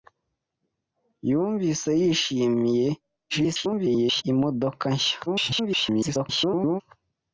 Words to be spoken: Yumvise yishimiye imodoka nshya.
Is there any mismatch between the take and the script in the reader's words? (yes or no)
yes